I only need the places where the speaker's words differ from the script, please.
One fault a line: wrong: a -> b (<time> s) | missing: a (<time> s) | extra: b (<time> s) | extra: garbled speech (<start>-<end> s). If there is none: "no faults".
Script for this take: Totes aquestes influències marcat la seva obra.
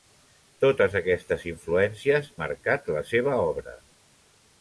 no faults